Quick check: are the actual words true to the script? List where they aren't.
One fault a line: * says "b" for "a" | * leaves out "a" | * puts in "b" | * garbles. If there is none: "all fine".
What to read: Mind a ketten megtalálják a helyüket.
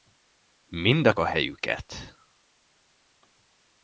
* leaves out "ketten megtalálják"